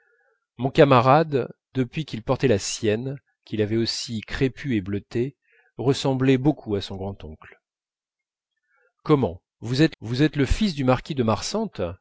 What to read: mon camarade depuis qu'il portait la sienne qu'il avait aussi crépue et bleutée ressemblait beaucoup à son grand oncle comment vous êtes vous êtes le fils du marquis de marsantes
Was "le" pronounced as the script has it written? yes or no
yes